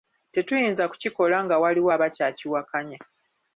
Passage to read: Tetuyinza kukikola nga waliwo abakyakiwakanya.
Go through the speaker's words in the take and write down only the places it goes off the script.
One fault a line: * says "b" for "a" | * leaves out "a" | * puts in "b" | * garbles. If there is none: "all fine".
all fine